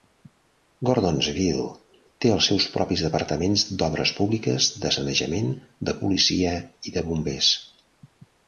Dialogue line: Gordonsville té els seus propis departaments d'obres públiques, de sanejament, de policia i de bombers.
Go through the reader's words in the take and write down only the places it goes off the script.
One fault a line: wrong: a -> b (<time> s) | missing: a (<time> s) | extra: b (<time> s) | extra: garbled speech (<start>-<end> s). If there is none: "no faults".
no faults